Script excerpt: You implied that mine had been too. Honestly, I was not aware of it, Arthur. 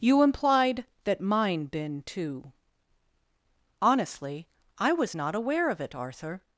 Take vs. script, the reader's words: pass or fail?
fail